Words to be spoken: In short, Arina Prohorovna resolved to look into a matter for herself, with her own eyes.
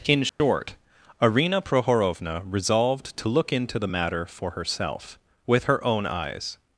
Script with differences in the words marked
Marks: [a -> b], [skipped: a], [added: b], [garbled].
In short, Arina Prohorovna resolved to look into [a -> the] matter for herself, with her own eyes.